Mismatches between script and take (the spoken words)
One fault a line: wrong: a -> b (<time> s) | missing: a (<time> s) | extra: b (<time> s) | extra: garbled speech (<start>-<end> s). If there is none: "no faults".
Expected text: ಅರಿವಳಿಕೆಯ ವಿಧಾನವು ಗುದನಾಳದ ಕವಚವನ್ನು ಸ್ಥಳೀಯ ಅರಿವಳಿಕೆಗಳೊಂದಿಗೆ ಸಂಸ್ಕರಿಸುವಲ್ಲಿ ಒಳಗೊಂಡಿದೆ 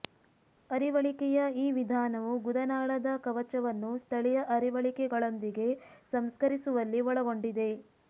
extra: ಈ (1.6 s)